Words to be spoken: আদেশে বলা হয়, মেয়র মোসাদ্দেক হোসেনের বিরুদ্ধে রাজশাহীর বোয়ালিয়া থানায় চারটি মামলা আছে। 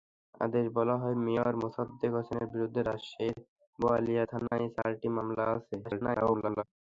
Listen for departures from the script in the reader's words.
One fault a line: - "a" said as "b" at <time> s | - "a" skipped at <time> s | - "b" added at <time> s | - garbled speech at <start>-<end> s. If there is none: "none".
- garbled speech at 5.8-6.6 s